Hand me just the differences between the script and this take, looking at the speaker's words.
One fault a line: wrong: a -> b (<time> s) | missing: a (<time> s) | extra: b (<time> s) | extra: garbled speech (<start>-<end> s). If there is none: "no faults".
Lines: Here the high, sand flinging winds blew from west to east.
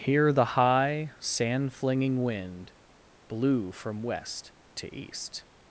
wrong: winds -> wind (2.2 s)